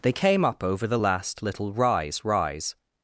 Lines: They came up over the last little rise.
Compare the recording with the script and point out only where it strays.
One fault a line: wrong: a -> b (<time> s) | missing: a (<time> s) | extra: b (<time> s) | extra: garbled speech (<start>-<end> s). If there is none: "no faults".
extra: rise (2.2 s)